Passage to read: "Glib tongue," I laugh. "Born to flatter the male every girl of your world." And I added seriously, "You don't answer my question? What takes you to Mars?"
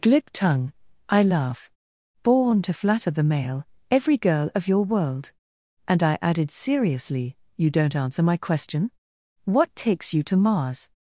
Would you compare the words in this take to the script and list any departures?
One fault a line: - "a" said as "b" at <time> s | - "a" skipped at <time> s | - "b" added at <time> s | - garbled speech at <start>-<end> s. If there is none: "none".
none